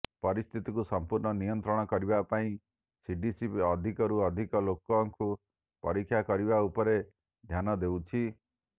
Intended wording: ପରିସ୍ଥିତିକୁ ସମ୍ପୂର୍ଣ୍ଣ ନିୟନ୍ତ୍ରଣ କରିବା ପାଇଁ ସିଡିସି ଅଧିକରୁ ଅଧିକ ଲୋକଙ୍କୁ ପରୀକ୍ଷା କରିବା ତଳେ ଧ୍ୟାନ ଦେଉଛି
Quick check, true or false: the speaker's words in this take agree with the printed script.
false